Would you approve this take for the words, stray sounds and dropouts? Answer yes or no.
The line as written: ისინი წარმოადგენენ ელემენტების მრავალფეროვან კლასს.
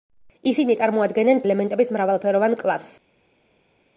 yes